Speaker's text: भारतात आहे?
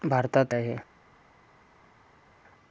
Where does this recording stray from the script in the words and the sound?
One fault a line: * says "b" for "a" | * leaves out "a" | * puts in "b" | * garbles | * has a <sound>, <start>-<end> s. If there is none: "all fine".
all fine